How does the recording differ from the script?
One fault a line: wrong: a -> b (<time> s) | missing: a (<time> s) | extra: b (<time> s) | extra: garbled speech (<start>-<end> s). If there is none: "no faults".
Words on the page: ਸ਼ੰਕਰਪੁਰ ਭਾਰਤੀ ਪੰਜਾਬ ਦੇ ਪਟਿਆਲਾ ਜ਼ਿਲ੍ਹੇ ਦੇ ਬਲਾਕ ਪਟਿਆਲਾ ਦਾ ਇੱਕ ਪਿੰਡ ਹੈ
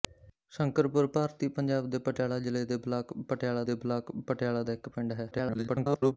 extra: ਦੇ ਬਲਾਕ ਪਟਿਆਲਾ (3.6 s)
extra: garbled speech (5.3-6.2 s)